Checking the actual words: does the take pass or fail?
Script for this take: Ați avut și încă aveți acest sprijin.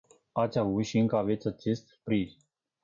pass